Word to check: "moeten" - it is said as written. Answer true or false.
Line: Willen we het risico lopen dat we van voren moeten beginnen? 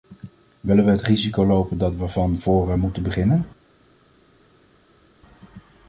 true